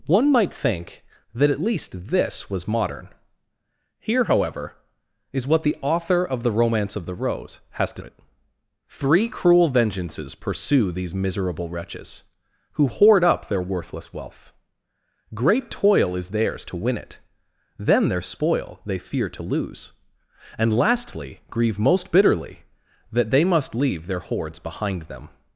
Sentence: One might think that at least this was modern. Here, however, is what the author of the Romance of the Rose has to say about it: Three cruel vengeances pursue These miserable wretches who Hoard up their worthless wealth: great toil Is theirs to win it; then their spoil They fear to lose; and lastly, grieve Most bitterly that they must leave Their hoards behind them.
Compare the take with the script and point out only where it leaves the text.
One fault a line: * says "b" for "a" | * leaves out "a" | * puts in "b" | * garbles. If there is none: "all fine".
* leaves out "say about"